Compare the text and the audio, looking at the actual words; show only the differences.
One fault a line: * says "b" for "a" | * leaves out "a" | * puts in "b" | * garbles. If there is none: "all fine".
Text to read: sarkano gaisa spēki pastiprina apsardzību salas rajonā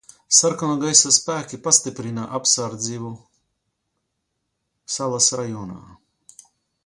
all fine